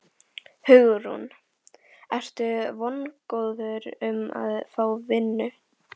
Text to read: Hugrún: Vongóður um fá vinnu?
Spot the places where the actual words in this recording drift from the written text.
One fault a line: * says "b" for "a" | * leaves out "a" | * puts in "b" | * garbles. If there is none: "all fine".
* puts in "Ertu"
* puts in "að"